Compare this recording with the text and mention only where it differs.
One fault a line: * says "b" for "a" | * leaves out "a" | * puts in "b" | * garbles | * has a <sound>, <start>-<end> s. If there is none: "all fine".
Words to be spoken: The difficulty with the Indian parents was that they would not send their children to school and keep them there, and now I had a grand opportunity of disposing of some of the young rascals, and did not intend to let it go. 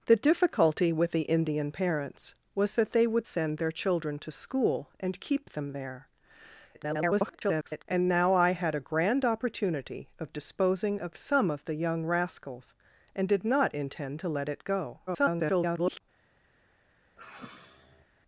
* leaves out "not"
* garbles
* garbles
* has a sigh, 17.2-18.1 s